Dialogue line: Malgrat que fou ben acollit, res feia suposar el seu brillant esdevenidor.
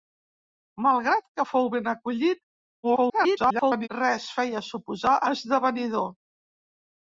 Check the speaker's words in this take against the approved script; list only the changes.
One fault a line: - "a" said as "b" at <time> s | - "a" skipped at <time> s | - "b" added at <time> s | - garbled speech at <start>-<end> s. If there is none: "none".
- garbled speech at 2.8-3.9 s
- "el seu brillant" skipped at 5.2 s